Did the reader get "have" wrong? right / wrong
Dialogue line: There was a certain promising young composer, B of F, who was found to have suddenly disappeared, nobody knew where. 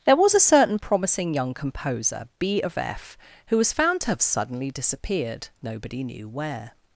right